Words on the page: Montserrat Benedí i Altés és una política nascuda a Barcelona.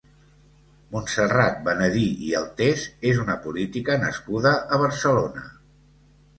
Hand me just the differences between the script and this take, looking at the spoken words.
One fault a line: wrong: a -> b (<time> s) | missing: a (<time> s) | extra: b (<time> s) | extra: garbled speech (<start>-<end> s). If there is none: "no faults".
no faults